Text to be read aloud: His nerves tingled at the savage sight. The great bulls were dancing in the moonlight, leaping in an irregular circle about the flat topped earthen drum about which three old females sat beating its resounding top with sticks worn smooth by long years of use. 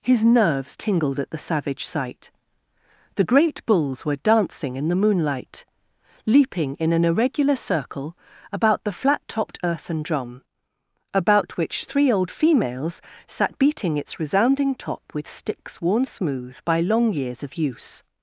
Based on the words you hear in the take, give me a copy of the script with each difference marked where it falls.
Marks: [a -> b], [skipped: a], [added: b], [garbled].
His nerves tingled at the savage sight. The great bulls were dancing in the moonlight, leaping in an irregular circle about the flat topped earthen drum about which three old females sat beating its resounding top with sticks worn smooth by long years of use.